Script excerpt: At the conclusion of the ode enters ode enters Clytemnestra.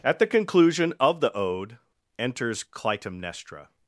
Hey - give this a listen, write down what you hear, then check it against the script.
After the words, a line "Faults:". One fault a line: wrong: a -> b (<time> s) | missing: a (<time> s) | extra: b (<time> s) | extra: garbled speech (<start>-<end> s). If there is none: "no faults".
At the conclusion of the ode enters Clytemnestra.
Faults:
missing: ode enters (2.6 s)